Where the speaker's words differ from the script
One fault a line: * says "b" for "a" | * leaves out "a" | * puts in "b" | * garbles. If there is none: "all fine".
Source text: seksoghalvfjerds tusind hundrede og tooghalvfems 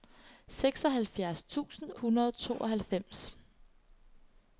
all fine